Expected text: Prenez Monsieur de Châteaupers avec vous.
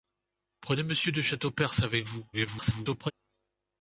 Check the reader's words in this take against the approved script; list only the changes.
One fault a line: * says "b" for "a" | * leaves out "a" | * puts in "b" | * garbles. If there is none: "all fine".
* garbles